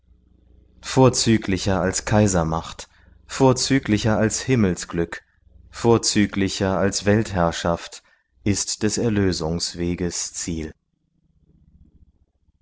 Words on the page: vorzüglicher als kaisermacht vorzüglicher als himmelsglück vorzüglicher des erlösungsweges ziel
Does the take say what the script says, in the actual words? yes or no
no